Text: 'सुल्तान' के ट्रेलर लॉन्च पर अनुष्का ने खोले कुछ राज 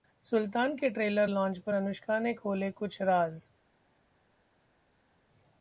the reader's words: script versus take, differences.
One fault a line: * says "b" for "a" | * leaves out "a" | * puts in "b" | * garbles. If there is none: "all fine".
all fine